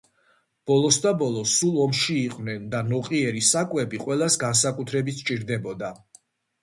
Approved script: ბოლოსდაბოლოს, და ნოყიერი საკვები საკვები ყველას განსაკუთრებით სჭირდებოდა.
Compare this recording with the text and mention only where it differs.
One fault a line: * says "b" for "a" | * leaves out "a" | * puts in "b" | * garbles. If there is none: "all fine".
* puts in "სულ ომში იყვნენ"
* leaves out "საკვები"